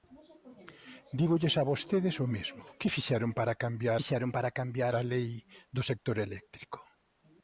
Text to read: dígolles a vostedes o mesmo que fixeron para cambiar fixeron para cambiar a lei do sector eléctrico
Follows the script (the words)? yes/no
yes